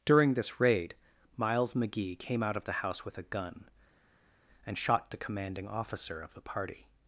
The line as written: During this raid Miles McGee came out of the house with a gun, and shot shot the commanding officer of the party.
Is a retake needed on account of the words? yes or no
yes